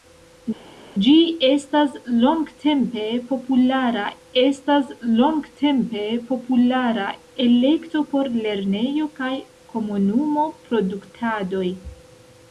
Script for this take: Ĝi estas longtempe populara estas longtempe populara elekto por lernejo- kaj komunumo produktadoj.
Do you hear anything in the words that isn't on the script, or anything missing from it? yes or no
no